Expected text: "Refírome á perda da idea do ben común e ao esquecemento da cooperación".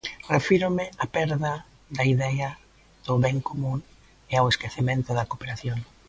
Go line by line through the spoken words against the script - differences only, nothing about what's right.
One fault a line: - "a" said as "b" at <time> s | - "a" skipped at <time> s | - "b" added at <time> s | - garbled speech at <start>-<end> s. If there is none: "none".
none